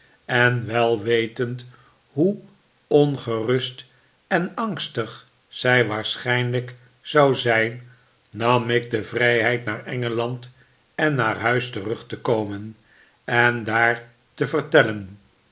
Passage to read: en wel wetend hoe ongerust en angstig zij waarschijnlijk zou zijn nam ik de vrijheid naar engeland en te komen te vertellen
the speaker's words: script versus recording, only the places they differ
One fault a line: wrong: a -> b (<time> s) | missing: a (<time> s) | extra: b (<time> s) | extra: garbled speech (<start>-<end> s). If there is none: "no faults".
extra: naar huis terug (11.1 s)
extra: en daar (13.2 s)